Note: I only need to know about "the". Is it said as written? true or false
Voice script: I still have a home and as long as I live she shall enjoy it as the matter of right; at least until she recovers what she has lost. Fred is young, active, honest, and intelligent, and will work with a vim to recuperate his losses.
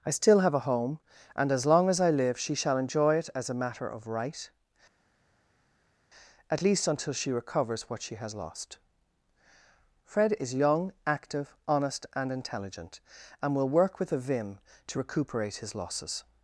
false